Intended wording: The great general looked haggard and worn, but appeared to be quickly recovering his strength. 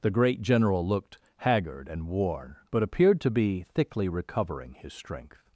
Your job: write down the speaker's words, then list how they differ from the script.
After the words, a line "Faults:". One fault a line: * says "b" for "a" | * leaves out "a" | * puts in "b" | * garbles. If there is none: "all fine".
The great general looked haggard and worn, but appeared to be thickly recovering his strength.
Faults:
* says "thickly" for "quickly"